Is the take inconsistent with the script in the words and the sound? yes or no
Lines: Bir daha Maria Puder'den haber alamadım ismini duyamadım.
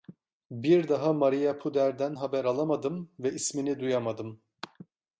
yes